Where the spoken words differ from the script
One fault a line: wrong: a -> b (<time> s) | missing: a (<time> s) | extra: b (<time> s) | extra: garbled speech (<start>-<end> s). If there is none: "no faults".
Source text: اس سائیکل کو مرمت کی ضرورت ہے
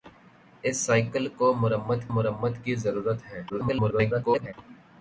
extra: مرمت (2.1 s)
extra: garbled speech (3.5-4.5 s)